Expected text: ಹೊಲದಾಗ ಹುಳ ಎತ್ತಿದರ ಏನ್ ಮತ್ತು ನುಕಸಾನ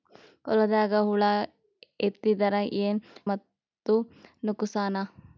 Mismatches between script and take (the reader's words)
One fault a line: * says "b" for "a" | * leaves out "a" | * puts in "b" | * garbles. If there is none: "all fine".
all fine